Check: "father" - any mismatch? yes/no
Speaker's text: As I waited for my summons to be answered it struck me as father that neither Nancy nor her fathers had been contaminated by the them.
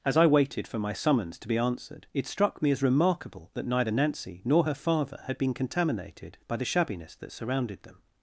yes